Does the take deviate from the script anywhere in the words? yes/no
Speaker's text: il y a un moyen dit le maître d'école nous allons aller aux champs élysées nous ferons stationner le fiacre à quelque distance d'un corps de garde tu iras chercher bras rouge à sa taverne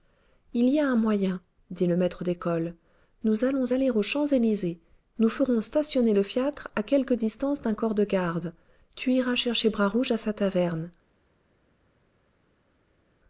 no